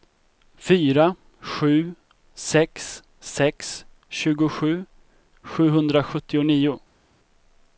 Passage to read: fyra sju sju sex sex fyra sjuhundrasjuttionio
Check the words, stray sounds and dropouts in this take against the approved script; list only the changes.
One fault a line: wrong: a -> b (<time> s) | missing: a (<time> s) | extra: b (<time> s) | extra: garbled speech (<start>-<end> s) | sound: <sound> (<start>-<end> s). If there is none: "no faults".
missing: sju (1.9 s)
wrong: fyra -> tjugosju (4.1 s)